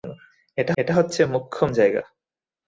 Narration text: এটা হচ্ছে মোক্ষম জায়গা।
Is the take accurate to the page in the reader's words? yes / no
no